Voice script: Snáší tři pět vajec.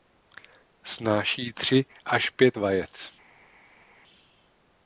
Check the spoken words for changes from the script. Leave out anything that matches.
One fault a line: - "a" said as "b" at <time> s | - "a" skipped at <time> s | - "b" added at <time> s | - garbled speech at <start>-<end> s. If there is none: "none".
- "až" added at 2.0 s